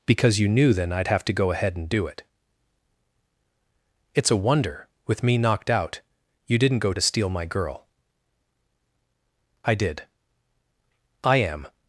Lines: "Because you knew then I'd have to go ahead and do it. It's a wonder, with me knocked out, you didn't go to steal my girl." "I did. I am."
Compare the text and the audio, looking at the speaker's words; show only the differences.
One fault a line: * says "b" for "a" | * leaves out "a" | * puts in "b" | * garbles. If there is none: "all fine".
all fine